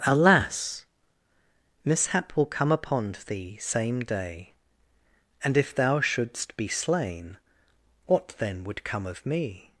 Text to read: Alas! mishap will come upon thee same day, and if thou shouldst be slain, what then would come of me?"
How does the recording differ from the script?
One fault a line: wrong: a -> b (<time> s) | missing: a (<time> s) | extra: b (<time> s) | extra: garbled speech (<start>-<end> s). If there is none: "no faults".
no faults